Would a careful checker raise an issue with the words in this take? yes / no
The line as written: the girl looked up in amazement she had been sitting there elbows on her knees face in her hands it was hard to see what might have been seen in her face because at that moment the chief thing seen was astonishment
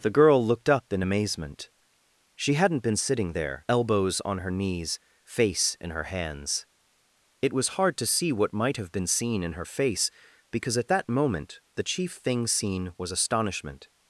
yes